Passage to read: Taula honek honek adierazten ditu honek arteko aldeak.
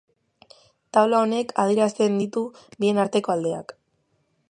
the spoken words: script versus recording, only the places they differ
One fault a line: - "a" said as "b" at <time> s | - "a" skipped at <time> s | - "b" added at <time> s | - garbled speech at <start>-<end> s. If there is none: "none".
- "honek" skipped at 1.5 s
- "honek" said as "bien" at 2.8 s